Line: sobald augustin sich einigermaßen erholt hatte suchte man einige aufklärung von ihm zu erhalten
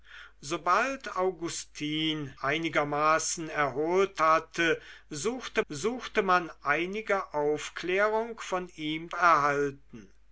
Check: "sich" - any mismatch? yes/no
yes